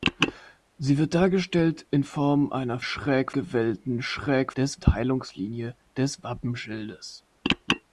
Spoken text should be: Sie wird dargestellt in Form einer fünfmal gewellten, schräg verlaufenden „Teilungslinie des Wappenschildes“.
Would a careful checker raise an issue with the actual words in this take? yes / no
yes